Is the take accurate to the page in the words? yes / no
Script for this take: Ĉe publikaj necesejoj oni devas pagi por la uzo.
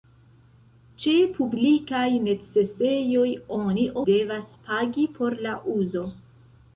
yes